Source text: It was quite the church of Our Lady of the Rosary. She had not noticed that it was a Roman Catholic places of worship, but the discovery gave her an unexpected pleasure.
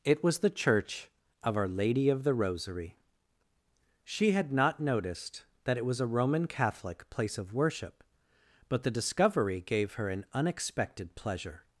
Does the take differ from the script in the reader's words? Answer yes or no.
yes